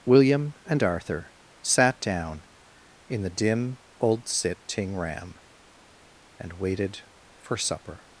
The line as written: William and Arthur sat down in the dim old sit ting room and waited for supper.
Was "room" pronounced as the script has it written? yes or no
no